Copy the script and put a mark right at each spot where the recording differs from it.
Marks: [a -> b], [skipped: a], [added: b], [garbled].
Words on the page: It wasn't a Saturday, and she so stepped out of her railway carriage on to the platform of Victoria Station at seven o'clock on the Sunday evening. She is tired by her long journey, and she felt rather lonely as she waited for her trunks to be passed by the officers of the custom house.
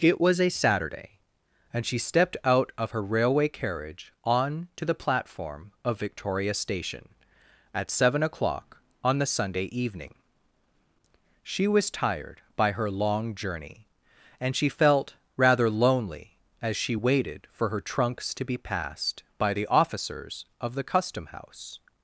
It [wasn't -> was] a Saturday, and she [skipped: so] stepped out of her railway carriage on to the platform of Victoria Station at seven o'clock on the Sunday evening. She [is -> was] tired by her long journey, and she felt rather lonely as she waited for her trunks to be passed by the officers of the custom house.